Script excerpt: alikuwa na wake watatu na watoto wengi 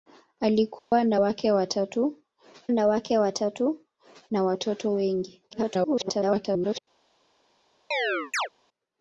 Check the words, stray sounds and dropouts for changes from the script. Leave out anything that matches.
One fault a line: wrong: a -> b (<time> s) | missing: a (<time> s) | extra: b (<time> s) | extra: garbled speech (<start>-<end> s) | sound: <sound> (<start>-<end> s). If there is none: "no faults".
sound: dropout (0.8-0.9 s)
extra: wake watatu na (2.9 s)
extra: garbled speech (5.5-6.8 s)
sound: chirp (7.9-8.5 s)